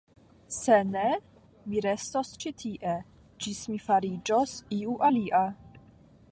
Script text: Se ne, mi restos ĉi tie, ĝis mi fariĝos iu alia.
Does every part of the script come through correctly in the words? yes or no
yes